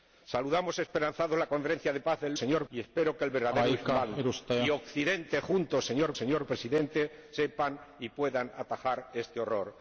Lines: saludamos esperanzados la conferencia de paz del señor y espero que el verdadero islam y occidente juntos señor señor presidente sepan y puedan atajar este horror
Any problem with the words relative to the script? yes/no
no